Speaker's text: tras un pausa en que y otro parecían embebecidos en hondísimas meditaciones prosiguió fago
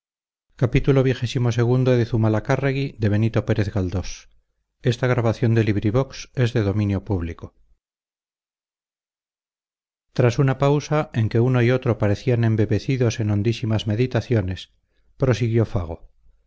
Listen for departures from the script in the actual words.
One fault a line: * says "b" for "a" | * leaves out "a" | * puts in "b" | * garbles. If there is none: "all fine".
* says "una" for "un"
* puts in "uno"